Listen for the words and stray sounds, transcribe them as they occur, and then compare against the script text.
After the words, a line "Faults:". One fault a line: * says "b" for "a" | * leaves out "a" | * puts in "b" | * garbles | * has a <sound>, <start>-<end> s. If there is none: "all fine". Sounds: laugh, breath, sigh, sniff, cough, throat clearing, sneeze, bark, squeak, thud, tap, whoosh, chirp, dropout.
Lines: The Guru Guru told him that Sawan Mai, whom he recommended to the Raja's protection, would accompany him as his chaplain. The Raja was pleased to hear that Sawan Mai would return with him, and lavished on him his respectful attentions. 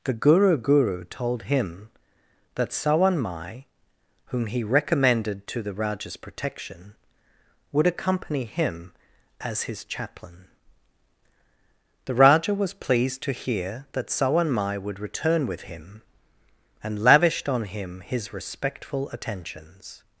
The Guru Guru told him that Sawan Mai, whom he recommended to the Raja's protection, would accompany him as his chaplain. The Raja was pleased to hear that Sawan Mai would return with him, and lavished on him his respectful attentions.
Faults:
all fine